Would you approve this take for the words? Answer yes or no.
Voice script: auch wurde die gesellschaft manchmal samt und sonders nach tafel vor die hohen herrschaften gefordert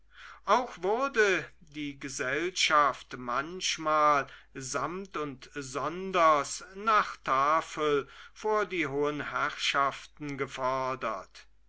yes